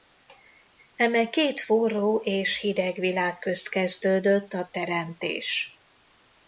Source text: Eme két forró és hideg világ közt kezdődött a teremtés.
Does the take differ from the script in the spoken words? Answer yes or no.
no